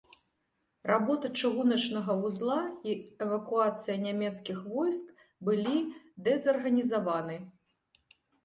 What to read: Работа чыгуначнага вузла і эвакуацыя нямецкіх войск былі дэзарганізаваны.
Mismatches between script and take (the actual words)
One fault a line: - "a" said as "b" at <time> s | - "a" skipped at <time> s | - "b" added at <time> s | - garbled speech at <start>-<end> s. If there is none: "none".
none